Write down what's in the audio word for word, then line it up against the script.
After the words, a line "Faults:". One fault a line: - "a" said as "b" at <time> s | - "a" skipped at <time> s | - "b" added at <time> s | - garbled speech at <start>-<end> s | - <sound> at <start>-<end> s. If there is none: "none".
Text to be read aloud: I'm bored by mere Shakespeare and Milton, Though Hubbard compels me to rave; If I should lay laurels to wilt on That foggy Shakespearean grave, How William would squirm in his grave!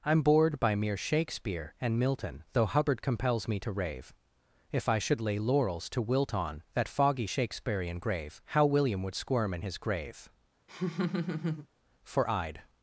I'm bored by mere Shakespeare and Milton, Though Hubbard compels me to rave; If I should lay laurels to wilt on That foggy Shakespearean grave, How William would squirm in his grave! For I'd
Faults:
- laugh at 10.7-11.7 s
- "For I'd" added at 12.0 s